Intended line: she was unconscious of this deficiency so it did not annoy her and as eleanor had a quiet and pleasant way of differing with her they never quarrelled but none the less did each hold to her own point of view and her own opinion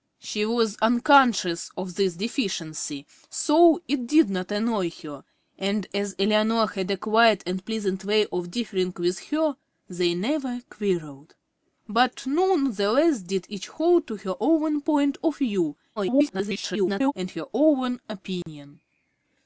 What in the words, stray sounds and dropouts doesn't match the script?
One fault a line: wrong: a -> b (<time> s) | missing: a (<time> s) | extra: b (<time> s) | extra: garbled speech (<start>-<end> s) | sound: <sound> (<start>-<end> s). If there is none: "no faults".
extra: garbled speech (16.0-17.1 s)
sound: dropout (18.4-18.5 s)